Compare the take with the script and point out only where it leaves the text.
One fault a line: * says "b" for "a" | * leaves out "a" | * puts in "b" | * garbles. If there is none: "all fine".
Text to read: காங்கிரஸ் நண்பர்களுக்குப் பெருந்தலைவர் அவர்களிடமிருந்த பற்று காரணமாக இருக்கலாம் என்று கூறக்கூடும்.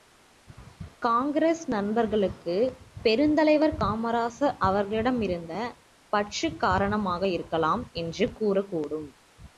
* puts in "காமராசர்"